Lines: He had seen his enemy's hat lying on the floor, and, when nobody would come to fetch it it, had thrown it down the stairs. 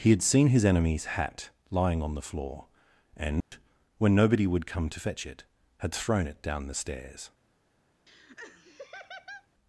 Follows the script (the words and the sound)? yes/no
no